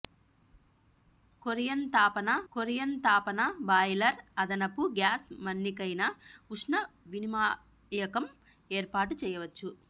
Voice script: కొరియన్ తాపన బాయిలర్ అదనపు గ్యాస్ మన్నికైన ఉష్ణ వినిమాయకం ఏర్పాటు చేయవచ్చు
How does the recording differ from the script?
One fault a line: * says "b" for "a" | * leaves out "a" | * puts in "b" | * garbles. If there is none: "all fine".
* puts in "కొరియన్ తాపన"